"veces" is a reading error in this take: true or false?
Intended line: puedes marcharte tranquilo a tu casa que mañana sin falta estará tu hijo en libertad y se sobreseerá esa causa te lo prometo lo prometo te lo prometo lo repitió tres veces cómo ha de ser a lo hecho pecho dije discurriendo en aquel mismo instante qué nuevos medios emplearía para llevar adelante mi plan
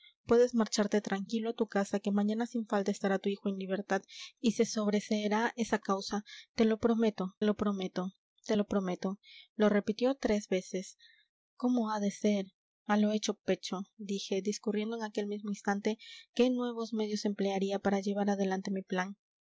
false